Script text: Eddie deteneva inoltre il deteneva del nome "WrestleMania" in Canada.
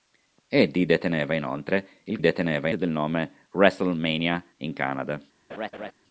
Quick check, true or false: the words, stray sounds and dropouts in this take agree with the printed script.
false